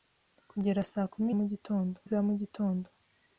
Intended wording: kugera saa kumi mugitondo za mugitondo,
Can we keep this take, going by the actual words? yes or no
yes